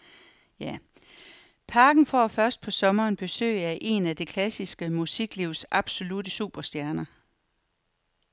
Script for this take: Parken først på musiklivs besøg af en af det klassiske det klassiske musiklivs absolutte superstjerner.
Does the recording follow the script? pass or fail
fail